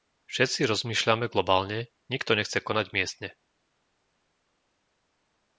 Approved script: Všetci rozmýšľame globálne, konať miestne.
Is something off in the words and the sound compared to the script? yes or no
yes